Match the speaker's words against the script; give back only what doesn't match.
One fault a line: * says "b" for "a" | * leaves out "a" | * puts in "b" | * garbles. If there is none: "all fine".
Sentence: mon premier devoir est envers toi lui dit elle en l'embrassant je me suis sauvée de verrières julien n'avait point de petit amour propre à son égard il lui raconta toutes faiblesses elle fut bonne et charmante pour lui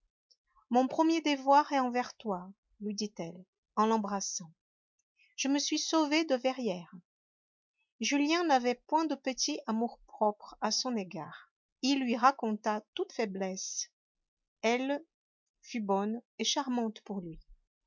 all fine